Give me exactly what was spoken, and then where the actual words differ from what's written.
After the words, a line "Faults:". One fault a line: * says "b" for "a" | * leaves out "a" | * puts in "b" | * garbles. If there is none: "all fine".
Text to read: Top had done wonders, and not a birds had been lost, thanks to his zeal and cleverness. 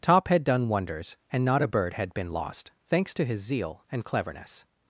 Top had done wonders, and not a bird had been lost, thanks to his zeal and cleverness.
Faults:
* says "bird" for "birds"